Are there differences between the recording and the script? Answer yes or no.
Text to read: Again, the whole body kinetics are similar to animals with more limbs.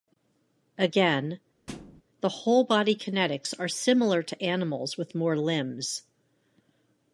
no